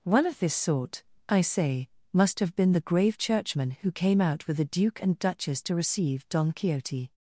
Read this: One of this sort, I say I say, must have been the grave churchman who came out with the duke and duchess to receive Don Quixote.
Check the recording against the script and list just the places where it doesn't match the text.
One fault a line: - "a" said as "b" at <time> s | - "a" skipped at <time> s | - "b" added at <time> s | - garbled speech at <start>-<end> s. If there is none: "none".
- "I say" skipped at 1.9 s